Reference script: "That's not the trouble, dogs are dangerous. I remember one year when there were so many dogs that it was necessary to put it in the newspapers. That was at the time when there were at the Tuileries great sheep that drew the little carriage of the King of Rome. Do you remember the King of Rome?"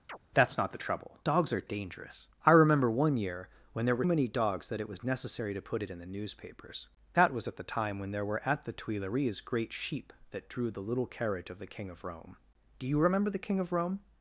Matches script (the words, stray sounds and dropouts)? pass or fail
fail